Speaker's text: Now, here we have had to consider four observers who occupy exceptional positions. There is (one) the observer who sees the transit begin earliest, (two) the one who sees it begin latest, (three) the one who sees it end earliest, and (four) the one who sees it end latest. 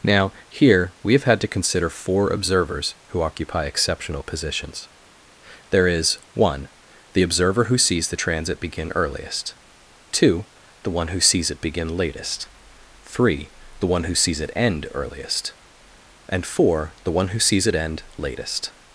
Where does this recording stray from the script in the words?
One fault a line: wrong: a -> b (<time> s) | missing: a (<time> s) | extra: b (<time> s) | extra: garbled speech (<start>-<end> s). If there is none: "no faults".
no faults